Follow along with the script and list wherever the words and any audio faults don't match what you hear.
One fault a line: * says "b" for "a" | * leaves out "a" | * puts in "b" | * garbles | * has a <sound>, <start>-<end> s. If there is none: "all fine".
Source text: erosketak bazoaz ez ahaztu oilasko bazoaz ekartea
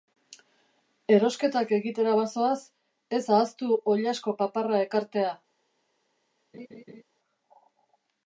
* puts in "egitera"
* says "paparra" for "bazoaz"
* has a laugh, 6.5-7.0 s